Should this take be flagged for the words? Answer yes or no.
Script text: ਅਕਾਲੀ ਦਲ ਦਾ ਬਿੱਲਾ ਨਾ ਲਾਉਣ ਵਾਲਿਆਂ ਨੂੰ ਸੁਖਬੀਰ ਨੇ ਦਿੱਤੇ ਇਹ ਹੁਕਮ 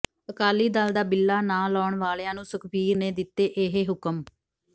no